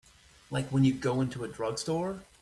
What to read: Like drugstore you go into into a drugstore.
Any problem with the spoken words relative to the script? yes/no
yes